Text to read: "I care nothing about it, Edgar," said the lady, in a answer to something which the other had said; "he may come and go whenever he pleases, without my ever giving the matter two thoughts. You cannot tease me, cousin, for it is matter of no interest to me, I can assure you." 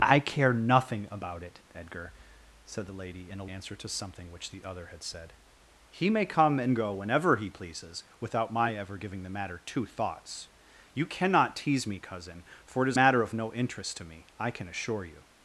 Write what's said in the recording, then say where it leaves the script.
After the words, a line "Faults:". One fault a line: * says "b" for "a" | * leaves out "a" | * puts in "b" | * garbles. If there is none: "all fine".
"I care nothing about it, Edgar," said the lady, in a answer to something which the other had said; "he may come and go whenever he pleases, without my ever giving the matter two thoughts. You cannot tease me, cousin, for it is matter of no interest to me, I can assure you."
Faults:
all fine